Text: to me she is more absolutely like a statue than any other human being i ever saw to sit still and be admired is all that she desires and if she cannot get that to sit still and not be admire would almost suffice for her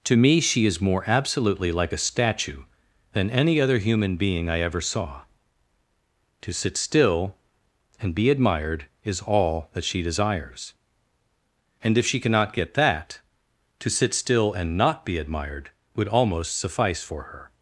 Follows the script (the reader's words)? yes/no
no